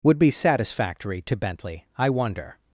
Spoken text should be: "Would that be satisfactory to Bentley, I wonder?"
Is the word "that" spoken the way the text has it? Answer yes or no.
no